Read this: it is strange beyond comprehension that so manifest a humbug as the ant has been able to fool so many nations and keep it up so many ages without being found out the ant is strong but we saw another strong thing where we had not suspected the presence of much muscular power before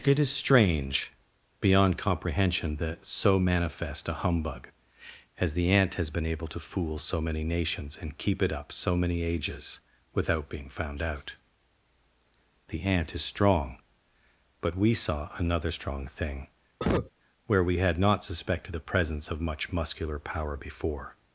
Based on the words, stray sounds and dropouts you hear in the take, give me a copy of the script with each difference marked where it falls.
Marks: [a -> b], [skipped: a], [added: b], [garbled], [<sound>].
it is strange beyond comprehension that so manifest a humbug as the ant has been able to fool so many nations and keep it up so many ages without being found out the ant is strong but we saw another strong thing [cough] where we had not suspected the presence of much muscular power before